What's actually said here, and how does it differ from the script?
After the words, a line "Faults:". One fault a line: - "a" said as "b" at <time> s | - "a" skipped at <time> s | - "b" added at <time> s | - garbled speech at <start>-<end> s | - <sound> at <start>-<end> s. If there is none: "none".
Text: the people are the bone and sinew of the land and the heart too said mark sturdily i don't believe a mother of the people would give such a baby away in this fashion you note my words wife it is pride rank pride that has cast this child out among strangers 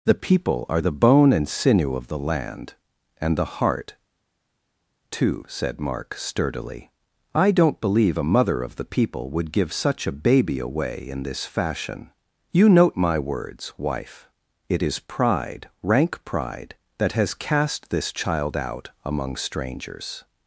the people are the bone and sinew of the land and the heart too said mark sturdily i don't believe a mother of the people would give such a baby away in this fashion you note my words wife it is pride rank pride that has cast this child out among strangers
Faults:
none